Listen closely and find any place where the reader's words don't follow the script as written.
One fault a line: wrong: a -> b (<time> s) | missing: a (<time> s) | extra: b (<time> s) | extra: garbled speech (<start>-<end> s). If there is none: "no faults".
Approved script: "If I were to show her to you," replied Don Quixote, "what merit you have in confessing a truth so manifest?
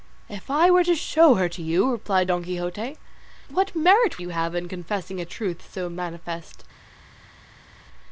no faults